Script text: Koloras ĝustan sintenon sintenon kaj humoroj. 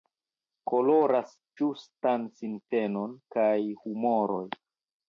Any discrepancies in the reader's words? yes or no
yes